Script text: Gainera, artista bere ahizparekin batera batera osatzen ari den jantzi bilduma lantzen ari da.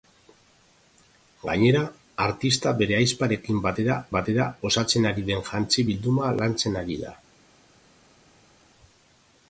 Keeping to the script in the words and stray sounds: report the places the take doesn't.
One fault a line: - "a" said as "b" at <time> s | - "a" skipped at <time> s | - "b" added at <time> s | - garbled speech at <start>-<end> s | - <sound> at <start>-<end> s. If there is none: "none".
none